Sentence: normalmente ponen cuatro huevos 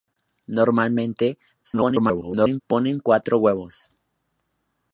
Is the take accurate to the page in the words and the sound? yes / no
no